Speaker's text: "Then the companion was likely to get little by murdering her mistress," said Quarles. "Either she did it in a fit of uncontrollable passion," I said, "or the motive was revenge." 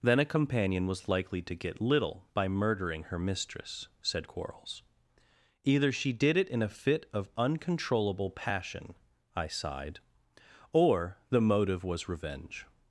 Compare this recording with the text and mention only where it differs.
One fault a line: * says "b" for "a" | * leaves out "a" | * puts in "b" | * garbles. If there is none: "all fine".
* says "a" for "the"
* says "sighed" for "said"